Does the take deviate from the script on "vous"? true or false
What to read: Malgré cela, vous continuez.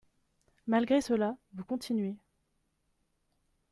false